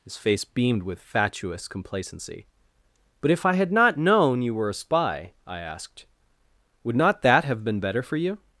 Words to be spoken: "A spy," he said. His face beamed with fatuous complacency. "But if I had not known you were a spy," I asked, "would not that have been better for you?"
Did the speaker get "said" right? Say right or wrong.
wrong